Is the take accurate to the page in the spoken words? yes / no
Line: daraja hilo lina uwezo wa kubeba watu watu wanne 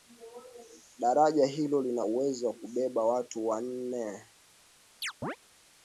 no